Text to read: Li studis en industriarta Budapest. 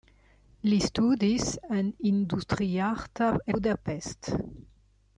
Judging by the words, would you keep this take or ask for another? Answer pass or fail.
pass